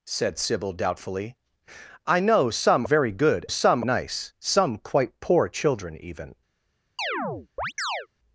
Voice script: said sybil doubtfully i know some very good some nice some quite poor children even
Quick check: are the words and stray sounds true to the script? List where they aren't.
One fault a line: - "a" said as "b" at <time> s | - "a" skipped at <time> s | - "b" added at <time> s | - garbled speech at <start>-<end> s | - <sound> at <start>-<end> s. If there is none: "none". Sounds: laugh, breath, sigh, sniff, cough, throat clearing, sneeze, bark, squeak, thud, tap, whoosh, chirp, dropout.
- chirp at 7.0-8.1 s